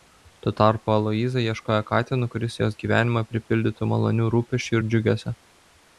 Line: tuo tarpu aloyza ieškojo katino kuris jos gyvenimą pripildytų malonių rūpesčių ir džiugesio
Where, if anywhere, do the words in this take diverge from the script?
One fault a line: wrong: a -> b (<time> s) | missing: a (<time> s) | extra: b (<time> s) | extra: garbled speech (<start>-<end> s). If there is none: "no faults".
no faults